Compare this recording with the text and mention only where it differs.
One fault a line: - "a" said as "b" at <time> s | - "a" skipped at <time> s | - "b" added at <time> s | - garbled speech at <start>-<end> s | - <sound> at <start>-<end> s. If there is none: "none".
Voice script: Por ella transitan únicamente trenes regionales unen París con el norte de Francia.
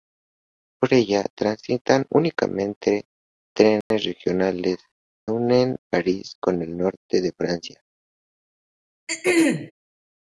- dropout at 3.8-3.9 s
- throat clearing at 9.1-9.7 s